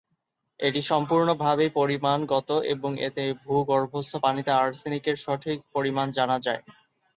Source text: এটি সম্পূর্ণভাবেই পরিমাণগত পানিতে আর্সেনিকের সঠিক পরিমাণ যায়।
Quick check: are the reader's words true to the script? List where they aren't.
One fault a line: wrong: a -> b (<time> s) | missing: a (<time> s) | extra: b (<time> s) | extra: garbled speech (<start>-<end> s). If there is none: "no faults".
extra: এবং এতে ভূগর্ভস্থ (2.7 s)
extra: জানা (6.2 s)